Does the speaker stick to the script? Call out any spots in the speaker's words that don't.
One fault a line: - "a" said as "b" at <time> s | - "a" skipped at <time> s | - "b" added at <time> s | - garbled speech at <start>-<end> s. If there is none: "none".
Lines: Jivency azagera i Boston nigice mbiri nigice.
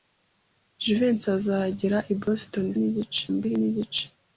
none